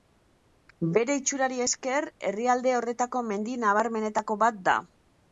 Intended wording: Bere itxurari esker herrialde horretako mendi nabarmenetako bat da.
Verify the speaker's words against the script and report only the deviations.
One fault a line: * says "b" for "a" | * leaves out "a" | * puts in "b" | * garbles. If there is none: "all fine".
all fine